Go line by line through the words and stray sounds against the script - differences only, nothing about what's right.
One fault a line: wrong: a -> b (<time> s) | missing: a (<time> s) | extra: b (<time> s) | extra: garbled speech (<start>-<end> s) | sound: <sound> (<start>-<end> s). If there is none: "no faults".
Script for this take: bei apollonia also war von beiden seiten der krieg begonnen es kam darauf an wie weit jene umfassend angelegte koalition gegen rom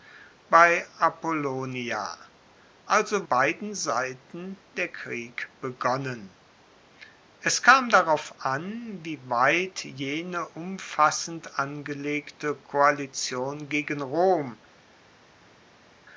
missing: war von (3.3 s)